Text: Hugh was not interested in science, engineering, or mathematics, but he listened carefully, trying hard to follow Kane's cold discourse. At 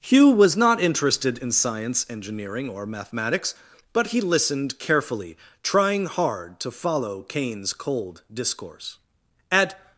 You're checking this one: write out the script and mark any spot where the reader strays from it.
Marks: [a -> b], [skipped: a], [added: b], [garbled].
Hugh was not interested in science, engineering, or mathematics, but he listened carefully, trying hard to follow Kane's cold discourse. At